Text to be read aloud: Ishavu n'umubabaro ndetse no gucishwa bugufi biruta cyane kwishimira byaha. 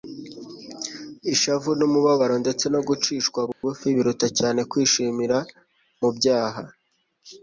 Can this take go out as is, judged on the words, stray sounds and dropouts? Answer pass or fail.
fail